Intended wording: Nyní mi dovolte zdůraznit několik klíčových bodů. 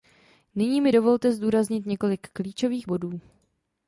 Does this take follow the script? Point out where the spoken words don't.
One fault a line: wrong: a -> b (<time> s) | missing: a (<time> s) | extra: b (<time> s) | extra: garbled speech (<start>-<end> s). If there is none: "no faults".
no faults